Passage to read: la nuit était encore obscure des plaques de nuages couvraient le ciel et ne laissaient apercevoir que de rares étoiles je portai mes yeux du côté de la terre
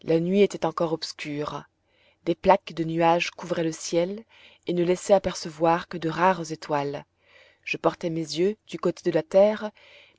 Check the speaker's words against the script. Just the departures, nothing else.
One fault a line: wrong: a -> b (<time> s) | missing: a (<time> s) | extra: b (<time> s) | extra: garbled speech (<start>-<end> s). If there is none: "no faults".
no faults